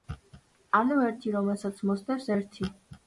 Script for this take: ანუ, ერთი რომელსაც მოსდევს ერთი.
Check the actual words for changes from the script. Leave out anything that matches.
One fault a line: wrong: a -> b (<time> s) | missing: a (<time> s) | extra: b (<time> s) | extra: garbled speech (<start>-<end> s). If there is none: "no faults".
no faults